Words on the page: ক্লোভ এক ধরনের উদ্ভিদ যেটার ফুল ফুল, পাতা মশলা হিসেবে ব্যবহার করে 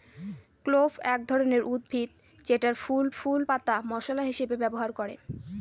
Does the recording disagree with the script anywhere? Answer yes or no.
no